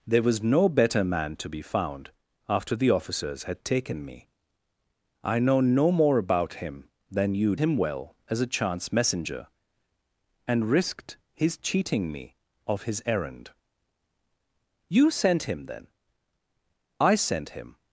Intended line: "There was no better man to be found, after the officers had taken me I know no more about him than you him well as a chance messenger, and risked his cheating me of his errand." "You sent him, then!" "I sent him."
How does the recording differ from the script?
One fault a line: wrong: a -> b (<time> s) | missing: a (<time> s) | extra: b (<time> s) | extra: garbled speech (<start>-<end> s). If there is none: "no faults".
no faults